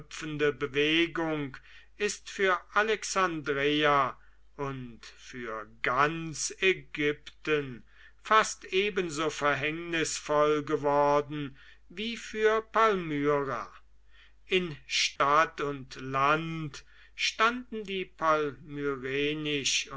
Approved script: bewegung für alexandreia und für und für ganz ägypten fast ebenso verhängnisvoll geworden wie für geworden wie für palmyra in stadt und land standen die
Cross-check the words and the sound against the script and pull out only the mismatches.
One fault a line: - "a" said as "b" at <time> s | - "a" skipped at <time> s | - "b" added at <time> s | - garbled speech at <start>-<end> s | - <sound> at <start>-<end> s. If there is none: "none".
- "ist" added at 2.0 s
- "und für" skipped at 5.7 s
- "geworden wie für" skipped at 12.6 s
- dropout at 15.2-15.2 s